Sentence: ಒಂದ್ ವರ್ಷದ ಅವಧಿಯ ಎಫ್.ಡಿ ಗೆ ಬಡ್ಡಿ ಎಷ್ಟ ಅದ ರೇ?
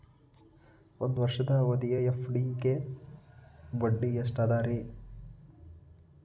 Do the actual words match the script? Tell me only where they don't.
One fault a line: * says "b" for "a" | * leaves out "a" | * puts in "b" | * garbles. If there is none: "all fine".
all fine